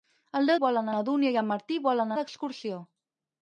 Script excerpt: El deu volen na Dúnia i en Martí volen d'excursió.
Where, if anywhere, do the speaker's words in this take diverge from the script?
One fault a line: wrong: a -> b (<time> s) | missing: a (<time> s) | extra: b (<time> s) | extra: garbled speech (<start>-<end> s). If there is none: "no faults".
no faults